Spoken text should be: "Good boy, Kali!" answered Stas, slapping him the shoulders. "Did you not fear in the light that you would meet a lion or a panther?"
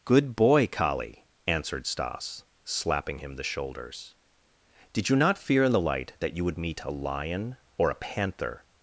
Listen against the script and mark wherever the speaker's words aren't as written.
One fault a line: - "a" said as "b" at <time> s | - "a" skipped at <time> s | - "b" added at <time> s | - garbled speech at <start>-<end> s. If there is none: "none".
none